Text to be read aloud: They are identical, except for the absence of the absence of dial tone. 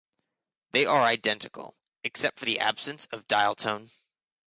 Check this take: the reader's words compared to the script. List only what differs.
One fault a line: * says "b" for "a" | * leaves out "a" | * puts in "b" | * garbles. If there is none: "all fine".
* leaves out "the absence of"